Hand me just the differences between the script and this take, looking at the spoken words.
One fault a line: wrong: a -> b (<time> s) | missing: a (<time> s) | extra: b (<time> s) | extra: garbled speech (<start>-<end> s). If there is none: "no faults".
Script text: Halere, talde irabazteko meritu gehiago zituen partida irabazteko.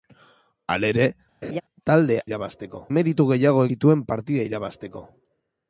no faults